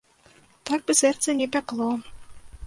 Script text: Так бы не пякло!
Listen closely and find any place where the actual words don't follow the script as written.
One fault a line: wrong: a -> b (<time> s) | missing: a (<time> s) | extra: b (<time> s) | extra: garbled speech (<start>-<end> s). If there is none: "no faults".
extra: сэрца (1.0 s)